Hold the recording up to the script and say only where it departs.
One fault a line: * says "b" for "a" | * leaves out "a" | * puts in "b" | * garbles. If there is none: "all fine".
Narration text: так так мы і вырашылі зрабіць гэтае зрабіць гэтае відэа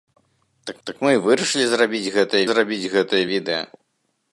all fine